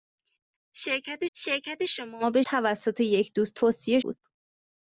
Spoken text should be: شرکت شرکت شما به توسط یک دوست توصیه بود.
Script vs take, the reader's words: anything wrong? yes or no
no